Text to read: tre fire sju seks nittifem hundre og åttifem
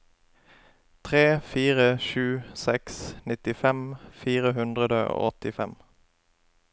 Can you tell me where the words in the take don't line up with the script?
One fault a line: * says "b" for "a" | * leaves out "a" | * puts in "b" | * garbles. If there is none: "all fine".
* puts in "fire"